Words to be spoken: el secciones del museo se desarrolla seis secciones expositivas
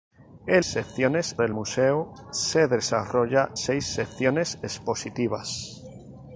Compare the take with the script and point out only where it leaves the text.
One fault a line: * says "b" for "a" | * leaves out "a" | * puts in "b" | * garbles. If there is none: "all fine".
all fine